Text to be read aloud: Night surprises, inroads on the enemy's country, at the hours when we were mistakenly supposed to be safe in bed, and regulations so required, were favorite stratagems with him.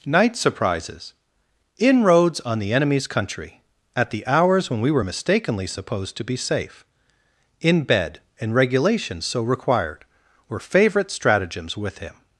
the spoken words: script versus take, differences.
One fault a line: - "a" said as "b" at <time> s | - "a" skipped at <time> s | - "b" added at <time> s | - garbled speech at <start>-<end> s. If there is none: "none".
none